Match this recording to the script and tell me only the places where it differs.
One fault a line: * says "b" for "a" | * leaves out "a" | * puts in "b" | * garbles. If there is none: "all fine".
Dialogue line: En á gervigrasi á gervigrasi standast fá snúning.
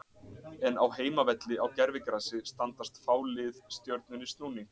* says "heimavelli" for "gervigrasi"
* puts in "lið Stjörnunni"